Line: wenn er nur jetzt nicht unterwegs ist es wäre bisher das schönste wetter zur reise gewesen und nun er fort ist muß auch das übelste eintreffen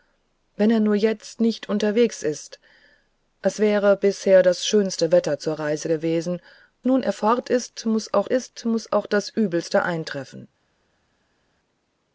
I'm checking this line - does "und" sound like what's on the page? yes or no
no